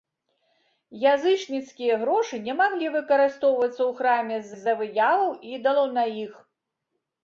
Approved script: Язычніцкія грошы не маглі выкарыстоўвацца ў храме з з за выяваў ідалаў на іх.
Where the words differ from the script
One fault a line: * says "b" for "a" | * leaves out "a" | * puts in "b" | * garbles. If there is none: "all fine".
all fine